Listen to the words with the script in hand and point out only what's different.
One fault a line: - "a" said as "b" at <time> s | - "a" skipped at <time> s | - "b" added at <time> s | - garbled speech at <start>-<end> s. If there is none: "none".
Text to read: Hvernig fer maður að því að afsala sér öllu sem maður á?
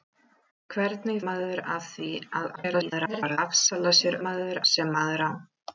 - "fer" skipped at 1.2 s
- garbled speech at 2.6-3.4 s
- "öllu" said as "maður" at 4.3 s